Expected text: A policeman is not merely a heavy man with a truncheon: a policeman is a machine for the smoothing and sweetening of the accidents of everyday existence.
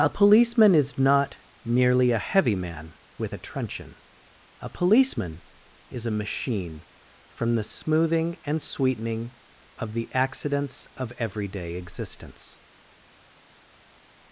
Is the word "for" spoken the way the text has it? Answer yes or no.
no